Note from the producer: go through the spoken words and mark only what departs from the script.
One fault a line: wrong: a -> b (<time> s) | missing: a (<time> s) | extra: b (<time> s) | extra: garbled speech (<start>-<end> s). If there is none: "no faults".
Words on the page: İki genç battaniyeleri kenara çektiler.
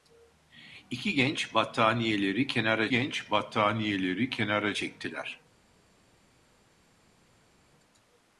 extra: genç battaniyeleri kenara (2.9 s)